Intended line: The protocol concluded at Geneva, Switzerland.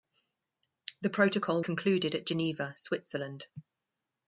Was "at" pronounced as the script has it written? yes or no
yes